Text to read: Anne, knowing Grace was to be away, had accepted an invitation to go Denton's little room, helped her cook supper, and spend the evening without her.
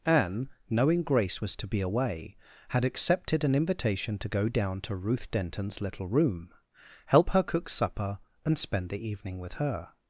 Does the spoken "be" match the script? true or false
true